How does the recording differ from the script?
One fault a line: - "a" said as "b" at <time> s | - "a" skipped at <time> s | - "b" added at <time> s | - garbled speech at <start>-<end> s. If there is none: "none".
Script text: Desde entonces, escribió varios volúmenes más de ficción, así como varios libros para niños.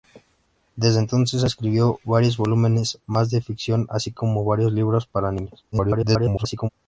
- garbled speech at 5.7-6.7 s